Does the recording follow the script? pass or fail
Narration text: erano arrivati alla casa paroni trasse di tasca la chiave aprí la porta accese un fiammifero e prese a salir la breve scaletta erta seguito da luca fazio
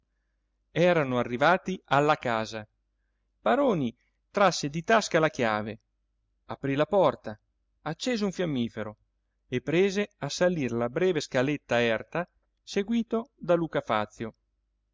pass